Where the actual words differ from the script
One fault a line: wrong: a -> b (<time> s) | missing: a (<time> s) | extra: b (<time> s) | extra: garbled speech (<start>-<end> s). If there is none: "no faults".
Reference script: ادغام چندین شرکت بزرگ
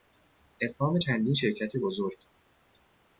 no faults